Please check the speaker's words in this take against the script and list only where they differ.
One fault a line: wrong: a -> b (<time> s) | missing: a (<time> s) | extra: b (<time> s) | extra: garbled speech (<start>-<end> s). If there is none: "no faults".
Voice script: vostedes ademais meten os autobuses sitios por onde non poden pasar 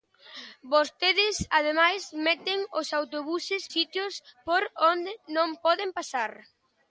no faults